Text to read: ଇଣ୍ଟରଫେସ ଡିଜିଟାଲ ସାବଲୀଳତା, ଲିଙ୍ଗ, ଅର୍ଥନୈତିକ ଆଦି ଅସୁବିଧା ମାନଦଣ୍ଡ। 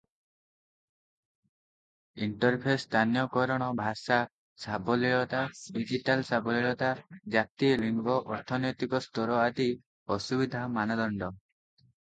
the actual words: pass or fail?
fail